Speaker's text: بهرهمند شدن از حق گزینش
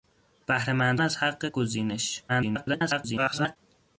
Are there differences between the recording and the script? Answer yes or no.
yes